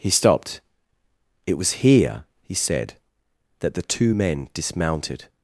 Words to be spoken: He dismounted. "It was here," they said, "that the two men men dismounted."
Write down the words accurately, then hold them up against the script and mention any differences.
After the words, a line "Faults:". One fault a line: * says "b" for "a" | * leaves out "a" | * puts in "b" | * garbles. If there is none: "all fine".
He stopped. "It was here," he said, "that the two men dismounted."
Faults:
* says "stopped" for "dismounted"
* says "he" for "they"
* leaves out "men"